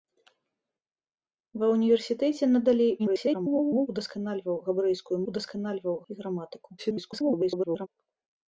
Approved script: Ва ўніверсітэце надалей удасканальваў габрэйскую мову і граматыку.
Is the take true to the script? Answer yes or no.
no